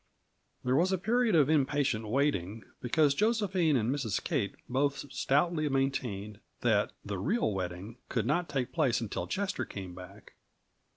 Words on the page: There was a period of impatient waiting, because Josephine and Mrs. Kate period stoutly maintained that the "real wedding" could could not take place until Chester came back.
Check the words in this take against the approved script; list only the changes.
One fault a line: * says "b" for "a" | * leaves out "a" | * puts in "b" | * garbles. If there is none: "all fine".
* says "both" for "period"
* leaves out "could"